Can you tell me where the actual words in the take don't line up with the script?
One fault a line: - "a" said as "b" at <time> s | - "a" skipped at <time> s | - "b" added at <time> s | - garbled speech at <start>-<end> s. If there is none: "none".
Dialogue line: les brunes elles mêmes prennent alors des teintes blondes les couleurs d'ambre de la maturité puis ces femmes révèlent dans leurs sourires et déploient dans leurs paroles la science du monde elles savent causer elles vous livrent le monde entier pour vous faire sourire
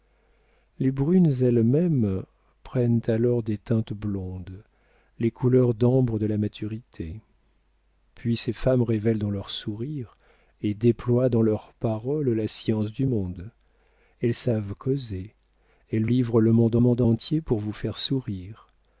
- "vous" skipped at 16.1 s
- "monde" added at 16.8 s